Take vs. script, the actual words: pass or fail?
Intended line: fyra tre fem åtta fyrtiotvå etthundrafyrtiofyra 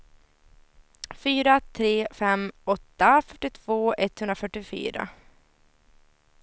pass